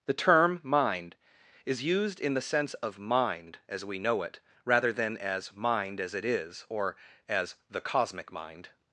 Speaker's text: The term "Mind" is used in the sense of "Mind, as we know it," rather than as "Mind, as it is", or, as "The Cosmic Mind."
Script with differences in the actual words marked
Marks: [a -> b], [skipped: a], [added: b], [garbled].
The term "Mind" is used in the sense of "Mind, as we know it," rather than as "Mind, as it is", or, as "The Cosmic Mind."